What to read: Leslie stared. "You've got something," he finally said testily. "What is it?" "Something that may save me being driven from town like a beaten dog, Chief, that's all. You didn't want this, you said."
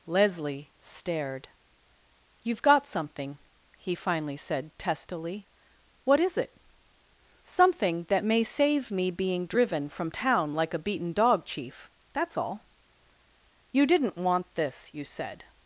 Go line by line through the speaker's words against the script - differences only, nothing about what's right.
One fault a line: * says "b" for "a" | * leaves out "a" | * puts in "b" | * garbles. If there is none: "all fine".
all fine